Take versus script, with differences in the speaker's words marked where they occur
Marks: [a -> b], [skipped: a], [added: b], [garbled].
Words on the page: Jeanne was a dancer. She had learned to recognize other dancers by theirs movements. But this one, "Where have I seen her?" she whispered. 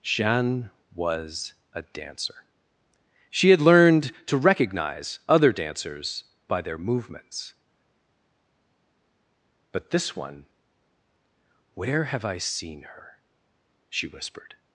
Jeanne was a dancer. She had learned to recognize other dancers by [theirs -> their] movements. But this one, "Where have I seen her?" she whispered.